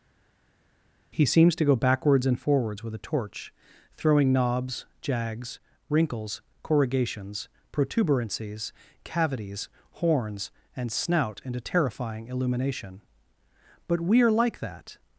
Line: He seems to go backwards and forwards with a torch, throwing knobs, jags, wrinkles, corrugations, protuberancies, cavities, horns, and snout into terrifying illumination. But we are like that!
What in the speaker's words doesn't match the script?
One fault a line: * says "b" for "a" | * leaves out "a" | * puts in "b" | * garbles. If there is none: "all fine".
all fine